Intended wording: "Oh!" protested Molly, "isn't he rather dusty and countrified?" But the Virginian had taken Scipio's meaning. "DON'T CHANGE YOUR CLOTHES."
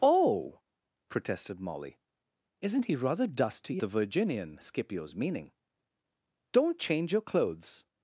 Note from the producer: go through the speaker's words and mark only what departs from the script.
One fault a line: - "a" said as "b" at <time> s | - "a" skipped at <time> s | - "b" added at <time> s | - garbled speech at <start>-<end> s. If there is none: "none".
- "and countrified But" skipped at 3.8 s
- "had taken" skipped at 4.6 s